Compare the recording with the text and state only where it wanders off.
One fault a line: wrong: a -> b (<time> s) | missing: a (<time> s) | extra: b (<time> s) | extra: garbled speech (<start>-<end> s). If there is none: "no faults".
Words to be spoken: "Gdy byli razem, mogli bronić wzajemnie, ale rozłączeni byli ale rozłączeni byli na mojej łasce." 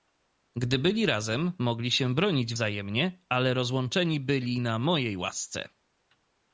extra: się (1.9 s)
missing: ale rozłączeni byli (4.6 s)